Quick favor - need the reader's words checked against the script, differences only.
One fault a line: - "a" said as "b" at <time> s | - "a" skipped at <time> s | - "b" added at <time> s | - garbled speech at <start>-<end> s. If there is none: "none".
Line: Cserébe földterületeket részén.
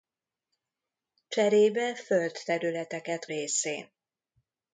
none